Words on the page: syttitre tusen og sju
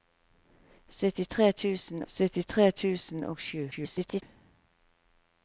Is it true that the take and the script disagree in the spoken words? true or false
true